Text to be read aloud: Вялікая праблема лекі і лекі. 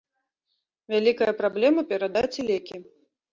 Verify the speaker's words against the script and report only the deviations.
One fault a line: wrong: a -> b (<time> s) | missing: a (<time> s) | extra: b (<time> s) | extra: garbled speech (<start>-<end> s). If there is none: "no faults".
wrong: лекі -> перадаць (1.9 s)